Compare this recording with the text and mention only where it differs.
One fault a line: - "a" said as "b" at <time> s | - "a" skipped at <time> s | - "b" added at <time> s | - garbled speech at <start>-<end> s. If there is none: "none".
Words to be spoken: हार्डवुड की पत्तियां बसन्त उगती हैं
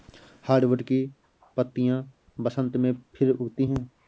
- "में फिर" added at 2.8 s